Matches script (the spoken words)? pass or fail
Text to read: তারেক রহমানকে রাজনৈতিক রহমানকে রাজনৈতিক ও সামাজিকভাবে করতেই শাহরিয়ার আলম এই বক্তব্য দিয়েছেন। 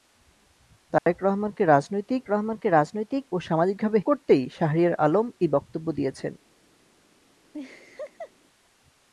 pass